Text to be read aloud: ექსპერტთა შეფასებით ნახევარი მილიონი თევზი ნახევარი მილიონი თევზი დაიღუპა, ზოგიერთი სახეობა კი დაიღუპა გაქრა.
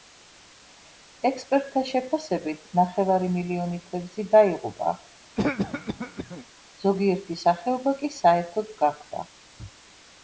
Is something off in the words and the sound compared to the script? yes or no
yes